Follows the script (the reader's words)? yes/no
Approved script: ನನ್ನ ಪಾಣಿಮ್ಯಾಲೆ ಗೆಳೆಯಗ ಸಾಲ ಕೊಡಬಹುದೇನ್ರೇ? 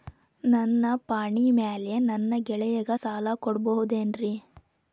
no